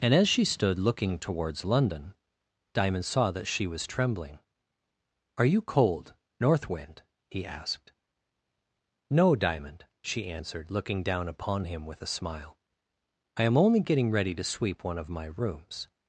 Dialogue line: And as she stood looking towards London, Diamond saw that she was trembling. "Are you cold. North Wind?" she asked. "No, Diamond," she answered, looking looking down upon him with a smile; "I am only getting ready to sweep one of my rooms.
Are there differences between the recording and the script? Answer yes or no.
yes